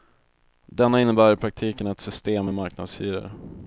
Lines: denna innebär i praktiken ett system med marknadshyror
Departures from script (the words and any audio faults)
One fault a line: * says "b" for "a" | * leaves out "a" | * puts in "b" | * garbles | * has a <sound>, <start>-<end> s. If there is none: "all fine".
all fine